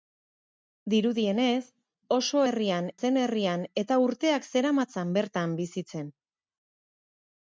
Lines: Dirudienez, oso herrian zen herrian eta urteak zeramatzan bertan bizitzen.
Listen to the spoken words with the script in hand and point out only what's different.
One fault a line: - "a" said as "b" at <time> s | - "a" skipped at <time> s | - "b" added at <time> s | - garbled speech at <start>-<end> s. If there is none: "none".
none